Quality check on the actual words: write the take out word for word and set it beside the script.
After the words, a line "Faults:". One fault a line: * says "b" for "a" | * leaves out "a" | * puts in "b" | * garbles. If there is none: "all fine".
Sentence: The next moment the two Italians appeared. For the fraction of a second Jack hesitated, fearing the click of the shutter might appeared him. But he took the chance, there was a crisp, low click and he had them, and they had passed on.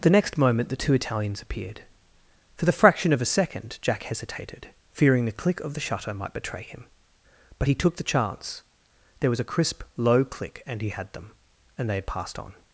The next moment the two Italians appeared. For the fraction of a second Jack hesitated, fearing the click of the shutter might betray him. But he took the chance, there was a crisp, low click and he had them, and they had passed on.
Faults:
* says "betray" for "appeared"